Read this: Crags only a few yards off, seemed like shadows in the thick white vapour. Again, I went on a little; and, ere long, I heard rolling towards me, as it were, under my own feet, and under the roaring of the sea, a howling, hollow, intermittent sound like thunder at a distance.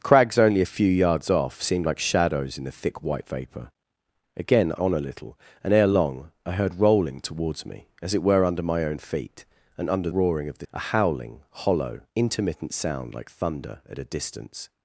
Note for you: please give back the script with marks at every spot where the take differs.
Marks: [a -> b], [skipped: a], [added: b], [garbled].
Crags only a few yards off, seemed like shadows in the thick white vapour. Again, I [skipped: went] on a little; and, ere long, I heard rolling towards me, as it were, under my own feet, and under [skipped: the] roaring of the [skipped: sea,] a howling, hollow, intermittent sound like thunder at a distance.